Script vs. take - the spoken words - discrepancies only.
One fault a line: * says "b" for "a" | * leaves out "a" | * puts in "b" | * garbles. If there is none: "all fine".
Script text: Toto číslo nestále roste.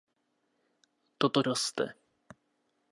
* leaves out "číslo nestále"